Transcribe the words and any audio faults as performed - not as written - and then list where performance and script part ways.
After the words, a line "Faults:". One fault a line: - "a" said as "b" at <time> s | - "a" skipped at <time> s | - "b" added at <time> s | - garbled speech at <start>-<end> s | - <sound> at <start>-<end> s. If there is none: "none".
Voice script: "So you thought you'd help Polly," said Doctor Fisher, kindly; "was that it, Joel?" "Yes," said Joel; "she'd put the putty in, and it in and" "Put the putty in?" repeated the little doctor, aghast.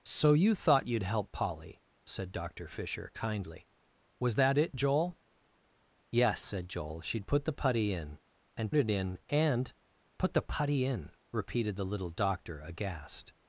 "So you thought you'd help Polly," said Doctor Fisher, kindly; "was that it, Joel?" "Yes," said Joel; "she'd put the putty in, and it in and" "Put the putty in?" repeated the little doctor, aghast.
Faults:
none